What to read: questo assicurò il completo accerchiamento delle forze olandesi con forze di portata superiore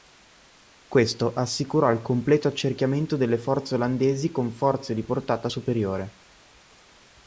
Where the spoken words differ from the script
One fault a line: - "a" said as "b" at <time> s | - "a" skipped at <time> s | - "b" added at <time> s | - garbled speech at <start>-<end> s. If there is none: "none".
none